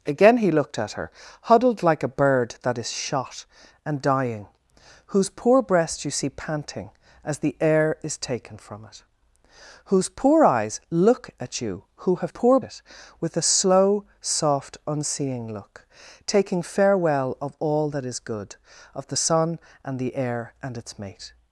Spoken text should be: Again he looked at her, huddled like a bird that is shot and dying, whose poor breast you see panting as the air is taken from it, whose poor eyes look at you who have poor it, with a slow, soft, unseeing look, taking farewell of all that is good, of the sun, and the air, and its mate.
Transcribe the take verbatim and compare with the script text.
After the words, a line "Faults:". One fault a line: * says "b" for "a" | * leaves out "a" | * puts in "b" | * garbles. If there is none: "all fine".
Again he looked at her, huddled like a bird that is shot and dying, whose poor breast you see panting as the air is taken from it, whose poor eyes look at you who have poor it, with a slow, soft, unseeing look, taking farewell of all that is good, of the sun, and the air, and its mate.
Faults:
all fine